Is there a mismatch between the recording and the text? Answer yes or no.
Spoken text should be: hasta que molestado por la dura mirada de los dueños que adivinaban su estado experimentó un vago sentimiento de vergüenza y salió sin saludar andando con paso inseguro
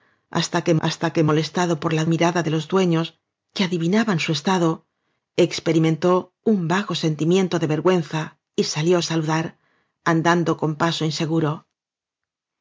yes